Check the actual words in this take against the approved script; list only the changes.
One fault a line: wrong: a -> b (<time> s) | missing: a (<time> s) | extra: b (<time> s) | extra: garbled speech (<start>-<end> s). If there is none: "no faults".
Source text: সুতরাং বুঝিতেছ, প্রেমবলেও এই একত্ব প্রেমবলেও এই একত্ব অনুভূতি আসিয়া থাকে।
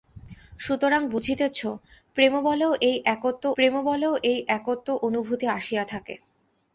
no faults